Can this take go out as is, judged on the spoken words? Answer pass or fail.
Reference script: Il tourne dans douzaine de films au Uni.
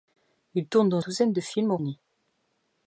pass